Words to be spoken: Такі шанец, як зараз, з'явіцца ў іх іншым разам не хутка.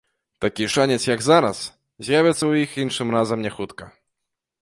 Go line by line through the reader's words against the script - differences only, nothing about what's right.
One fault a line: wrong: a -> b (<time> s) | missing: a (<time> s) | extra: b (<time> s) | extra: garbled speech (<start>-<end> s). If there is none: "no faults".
no faults